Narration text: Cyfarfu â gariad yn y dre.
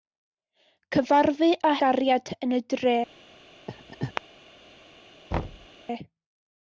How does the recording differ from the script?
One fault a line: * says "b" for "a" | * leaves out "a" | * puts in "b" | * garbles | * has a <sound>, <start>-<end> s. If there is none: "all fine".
* has a laugh, 3.7-4.2 s
* has a thud, 5.3-5.7 s